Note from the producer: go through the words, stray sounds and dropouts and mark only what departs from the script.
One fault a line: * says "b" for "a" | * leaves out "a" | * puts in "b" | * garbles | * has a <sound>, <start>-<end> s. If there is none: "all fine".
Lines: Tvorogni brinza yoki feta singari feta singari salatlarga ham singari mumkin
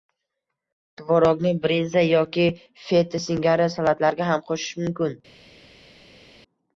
* leaves out "feta singari"
* says "qo‘shish" for "singari"